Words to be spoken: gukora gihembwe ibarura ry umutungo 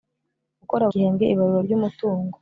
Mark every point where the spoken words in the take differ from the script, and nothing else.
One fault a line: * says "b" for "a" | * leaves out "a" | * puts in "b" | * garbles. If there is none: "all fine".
all fine